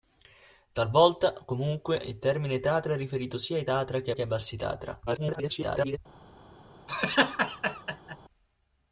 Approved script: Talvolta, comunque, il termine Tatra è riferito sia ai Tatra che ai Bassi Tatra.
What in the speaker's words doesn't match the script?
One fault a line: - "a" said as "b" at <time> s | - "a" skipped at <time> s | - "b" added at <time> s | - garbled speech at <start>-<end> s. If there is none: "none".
- "che" added at 4.1 s
- garbled speech at 5.1-6.0 s